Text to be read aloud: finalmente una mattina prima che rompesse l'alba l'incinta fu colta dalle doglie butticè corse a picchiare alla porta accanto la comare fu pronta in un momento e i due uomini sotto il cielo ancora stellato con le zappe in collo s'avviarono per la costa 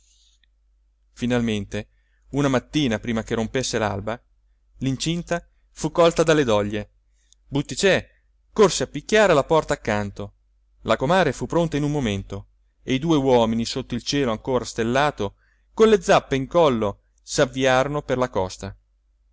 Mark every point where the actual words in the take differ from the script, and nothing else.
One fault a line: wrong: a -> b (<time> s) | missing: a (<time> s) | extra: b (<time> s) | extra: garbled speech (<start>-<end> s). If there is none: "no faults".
no faults